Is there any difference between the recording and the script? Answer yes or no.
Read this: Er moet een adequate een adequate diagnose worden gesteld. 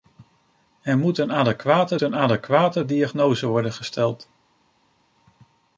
no